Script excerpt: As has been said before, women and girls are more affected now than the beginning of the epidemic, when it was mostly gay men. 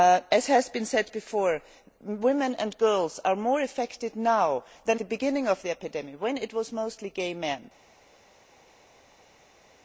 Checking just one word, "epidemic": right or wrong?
right